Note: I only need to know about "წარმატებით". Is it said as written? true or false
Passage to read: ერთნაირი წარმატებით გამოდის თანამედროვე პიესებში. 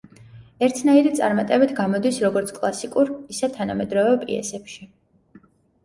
true